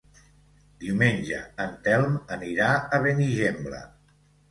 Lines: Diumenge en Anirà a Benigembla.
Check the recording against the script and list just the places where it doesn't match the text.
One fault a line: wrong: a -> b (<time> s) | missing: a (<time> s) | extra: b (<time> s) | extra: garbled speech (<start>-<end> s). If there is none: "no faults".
extra: Telm (1.9 s)